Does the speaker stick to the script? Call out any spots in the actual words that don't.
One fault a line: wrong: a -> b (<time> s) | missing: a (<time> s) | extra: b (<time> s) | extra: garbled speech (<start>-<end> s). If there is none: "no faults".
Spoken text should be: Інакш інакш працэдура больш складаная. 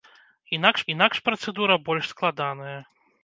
no faults